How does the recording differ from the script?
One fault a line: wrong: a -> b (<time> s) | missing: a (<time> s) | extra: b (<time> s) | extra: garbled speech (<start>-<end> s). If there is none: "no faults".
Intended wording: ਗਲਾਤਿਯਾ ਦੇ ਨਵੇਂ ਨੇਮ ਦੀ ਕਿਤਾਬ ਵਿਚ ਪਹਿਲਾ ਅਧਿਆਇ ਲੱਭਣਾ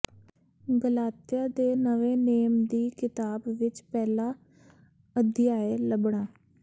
no faults